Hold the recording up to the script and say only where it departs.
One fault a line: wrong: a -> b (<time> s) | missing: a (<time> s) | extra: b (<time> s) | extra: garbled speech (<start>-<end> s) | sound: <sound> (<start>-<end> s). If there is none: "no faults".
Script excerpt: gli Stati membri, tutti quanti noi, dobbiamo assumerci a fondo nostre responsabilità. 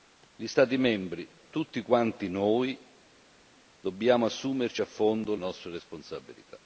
no faults